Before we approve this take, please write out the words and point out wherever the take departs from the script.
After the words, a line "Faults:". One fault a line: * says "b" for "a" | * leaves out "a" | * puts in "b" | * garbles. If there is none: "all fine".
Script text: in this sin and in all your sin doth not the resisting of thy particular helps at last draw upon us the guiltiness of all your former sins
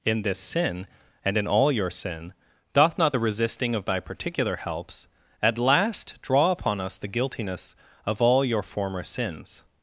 in this sin and in all your sin doth not the resisting of thy particular helps at last draw upon us the guiltiness of all your former sins
Faults:
all fine